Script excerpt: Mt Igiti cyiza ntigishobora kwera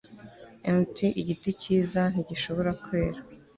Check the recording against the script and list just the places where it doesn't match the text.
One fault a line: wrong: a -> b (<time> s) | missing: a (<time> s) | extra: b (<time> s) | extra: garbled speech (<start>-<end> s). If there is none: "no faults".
no faults